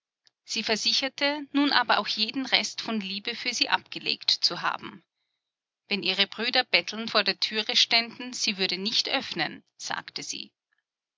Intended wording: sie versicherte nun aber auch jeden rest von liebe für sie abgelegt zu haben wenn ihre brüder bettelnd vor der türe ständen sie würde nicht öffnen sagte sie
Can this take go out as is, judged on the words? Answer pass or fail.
pass